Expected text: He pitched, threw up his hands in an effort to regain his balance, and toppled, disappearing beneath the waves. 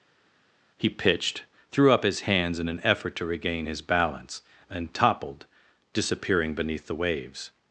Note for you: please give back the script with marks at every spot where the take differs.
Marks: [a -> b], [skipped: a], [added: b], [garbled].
He pitched, threw up his hands in an effort to regain his balance, and toppled, disappearing beneath the waves.